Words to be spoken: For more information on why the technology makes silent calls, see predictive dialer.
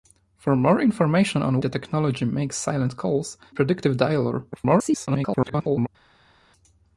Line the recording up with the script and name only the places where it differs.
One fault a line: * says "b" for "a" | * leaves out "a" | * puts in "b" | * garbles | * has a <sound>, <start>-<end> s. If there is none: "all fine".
* leaves out "why"
* leaves out "see"
* garbles